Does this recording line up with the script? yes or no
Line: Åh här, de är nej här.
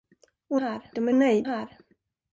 yes